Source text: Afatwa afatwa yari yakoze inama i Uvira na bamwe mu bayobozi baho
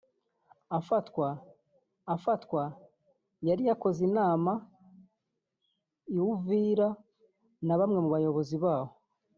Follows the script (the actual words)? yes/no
yes